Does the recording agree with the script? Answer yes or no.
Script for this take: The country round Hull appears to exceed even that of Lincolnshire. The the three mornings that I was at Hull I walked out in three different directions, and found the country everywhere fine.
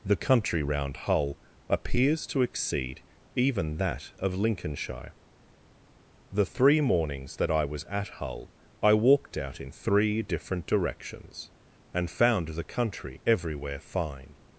no